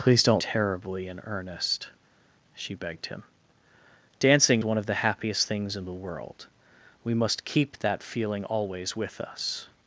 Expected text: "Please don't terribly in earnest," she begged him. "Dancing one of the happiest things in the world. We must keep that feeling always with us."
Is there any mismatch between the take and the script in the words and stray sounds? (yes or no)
no